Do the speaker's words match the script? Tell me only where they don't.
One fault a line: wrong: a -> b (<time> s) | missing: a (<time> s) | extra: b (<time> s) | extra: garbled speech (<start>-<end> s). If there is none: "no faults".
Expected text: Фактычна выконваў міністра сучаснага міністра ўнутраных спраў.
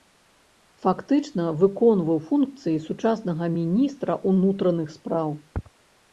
wrong: міністра -> функцыі (2.3 s)